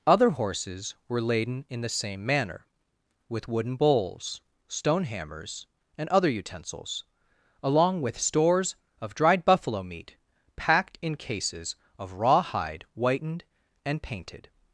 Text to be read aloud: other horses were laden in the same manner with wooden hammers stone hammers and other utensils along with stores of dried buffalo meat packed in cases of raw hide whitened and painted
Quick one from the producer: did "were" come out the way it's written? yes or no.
yes